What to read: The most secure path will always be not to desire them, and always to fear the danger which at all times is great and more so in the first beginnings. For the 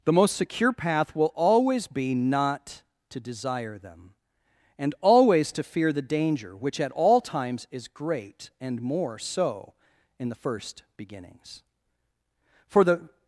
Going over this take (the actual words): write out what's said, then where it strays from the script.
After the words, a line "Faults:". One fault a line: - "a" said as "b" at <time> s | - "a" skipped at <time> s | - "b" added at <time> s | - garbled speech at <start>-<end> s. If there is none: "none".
The most secure path will always be not to desire them, and always to fear the danger which at all times is great and more so in the first beginnings. For the
Faults:
none